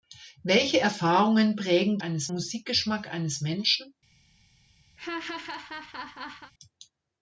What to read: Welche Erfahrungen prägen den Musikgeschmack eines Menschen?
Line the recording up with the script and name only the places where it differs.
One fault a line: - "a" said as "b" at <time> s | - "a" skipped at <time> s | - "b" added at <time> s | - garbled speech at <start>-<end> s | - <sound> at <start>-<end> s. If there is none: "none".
- "den" said as "eines" at 2.0 s
- laugh at 5.0-6.5 s